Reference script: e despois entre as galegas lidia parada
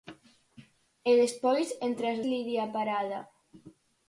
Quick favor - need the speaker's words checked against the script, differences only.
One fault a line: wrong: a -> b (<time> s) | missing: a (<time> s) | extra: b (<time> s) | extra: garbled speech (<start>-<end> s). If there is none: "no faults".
missing: galegas (2.2 s)